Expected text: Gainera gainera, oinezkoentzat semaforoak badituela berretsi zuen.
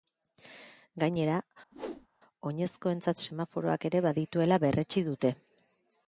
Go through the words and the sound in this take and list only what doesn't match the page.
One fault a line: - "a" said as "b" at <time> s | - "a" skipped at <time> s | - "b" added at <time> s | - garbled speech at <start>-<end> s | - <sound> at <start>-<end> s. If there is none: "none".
- "gainera" skipped at 1.4 s
- whoosh at 1.7-2.1 s
- "ere" added at 3.9 s
- "zuen" said as "dute" at 5.1 s